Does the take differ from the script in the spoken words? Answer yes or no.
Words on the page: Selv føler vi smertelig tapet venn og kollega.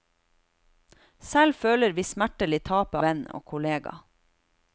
no